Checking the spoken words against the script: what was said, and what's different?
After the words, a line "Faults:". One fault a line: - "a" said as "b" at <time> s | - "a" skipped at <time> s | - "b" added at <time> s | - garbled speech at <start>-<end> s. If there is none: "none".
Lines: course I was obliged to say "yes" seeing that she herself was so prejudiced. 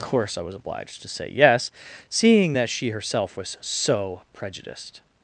course I was obliged to say "yes" seeing that she herself was so prejudiced.
Faults:
none